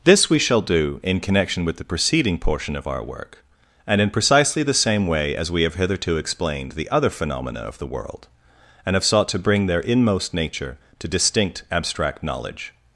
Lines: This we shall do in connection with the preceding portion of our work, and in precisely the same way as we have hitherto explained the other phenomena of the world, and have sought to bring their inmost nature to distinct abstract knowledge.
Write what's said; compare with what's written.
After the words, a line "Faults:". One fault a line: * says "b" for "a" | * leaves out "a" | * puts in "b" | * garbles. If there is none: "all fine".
This we shall do in connection with the preceding portion of our work, and in precisely the same way as we have hitherto explained the other phenomena of the world, and have sought to bring their inmost nature to distinct abstract knowledge.
Faults:
all fine